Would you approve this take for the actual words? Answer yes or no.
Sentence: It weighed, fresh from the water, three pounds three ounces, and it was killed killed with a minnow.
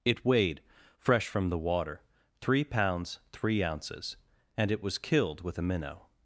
no